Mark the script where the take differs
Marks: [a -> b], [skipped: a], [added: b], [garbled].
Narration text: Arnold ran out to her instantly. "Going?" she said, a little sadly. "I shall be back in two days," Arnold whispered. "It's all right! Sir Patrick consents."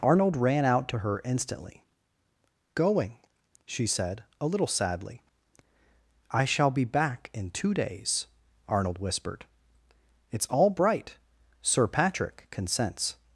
Arnold ran out to her instantly. "Going?" she said, a little sadly. "I shall be back in two days," Arnold whispered. "It's all [right! -> bright] Sir Patrick consents."